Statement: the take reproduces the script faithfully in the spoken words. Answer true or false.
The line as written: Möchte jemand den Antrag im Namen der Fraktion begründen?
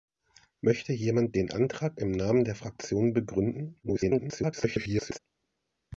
false